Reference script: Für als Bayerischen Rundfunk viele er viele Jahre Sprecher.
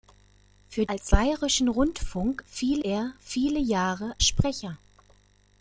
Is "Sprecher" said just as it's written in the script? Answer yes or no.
yes